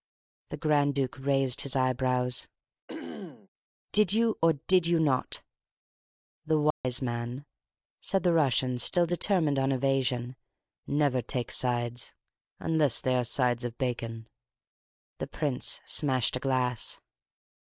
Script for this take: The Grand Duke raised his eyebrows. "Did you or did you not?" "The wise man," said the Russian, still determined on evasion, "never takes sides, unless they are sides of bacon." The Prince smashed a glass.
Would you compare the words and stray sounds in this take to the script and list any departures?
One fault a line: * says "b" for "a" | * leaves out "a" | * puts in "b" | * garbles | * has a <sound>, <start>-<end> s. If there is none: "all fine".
* has a throat clearing, 2.9-3.5 s
* has a dropout, 6.7-6.8 s